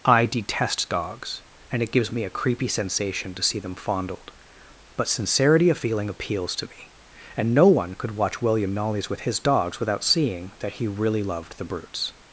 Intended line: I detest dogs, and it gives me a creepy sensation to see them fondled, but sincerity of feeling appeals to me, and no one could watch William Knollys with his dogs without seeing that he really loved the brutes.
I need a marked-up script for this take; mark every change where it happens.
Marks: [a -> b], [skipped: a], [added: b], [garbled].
I detest dogs, and it gives me a creepy sensation to see them fondled, but sincerity of feeling appeals to me, and no one could watch William Knollys with his dogs without seeing that he really loved the brutes.